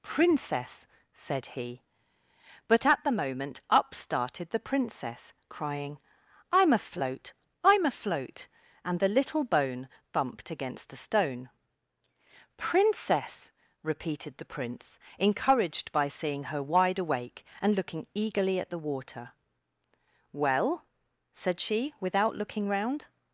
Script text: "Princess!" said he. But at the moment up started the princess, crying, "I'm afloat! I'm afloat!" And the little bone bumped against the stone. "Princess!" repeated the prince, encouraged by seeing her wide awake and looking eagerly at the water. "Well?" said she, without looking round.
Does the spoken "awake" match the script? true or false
true